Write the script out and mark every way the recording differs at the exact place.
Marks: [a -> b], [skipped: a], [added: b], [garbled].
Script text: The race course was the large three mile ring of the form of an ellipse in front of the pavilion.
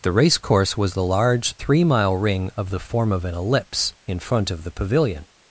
The race course was the large three mile ring of the form of an ellipse in front of the pavilion.